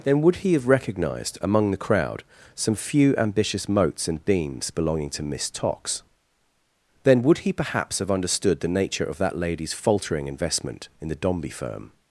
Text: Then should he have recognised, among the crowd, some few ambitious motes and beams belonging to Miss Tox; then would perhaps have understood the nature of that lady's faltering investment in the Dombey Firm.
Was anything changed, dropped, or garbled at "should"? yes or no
yes